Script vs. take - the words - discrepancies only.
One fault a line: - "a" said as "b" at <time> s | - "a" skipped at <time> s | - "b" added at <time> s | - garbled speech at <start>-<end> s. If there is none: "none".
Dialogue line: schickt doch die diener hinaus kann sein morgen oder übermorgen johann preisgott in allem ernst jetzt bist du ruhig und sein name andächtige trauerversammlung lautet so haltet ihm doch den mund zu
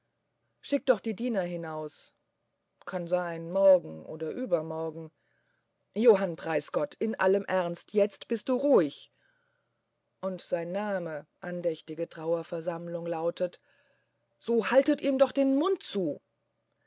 none